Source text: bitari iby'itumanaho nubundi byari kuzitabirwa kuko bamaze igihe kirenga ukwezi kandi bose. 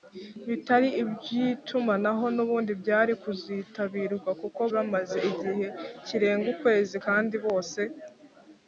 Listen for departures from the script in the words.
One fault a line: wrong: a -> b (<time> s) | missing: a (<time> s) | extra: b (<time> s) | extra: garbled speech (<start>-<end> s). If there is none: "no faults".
no faults